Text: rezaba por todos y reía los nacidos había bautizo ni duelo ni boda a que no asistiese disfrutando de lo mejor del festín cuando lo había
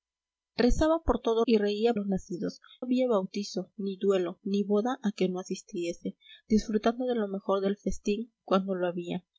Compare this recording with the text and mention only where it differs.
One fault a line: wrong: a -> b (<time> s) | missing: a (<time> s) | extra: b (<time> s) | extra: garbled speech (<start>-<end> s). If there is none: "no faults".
no faults